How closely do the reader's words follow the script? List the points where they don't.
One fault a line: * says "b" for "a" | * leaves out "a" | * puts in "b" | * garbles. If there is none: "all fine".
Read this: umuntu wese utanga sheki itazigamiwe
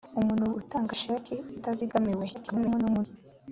* leaves out "wese"
* garbles